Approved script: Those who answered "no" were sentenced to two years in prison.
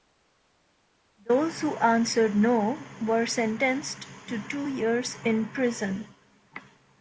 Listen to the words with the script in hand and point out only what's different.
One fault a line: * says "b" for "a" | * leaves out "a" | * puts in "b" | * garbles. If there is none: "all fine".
all fine